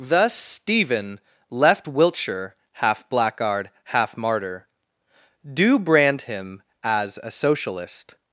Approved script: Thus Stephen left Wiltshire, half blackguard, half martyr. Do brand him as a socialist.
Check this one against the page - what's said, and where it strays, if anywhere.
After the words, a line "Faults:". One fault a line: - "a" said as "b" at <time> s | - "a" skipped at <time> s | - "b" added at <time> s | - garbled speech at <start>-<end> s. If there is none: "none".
Thus Stephen left Wiltshire, half blackguard, half martyr. Do brand him as a socialist.
Faults:
none